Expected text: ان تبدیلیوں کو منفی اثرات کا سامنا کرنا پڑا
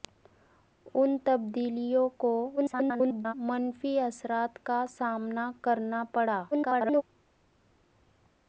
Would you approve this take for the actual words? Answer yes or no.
no